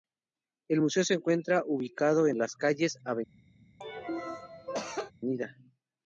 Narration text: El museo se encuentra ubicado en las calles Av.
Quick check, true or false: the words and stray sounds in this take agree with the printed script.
false